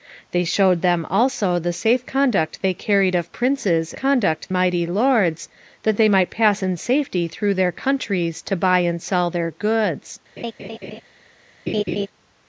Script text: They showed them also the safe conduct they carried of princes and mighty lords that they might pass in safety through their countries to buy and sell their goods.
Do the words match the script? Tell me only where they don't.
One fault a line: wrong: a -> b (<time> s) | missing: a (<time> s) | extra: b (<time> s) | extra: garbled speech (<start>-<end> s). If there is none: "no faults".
wrong: and -> conduct (4.0 s)